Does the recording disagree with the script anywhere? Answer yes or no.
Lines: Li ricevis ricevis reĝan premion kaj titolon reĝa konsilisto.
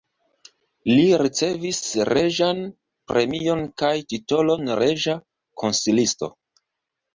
yes